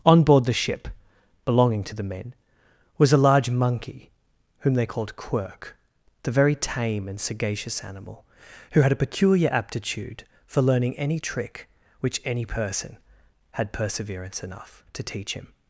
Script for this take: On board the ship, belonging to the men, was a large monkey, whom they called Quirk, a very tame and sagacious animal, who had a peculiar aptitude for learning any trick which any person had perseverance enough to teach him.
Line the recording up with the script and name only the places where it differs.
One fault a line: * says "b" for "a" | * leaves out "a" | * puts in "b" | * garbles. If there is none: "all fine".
* says "the" for "a"